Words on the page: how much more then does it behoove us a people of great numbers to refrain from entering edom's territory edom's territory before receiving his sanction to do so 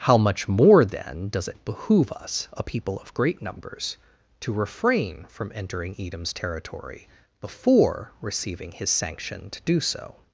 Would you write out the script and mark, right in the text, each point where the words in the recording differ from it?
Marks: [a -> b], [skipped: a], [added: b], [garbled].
how much more then does it behoove us a people of great numbers to refrain from entering edom's territory [skipped: edom's territory] before receiving his sanction to do so